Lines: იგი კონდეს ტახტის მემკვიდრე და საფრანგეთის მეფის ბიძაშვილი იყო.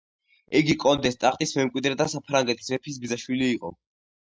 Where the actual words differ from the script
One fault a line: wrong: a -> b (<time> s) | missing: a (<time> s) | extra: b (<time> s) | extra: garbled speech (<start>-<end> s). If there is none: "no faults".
no faults